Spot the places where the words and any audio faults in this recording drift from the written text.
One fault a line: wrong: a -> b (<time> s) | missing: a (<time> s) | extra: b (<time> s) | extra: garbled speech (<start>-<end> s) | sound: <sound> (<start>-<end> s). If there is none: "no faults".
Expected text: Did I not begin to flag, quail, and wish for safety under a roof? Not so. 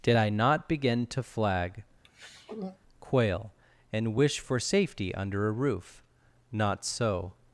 sound: throat clearing (2.0-2.8 s)